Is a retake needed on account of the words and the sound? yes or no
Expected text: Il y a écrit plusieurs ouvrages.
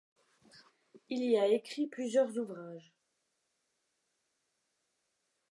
no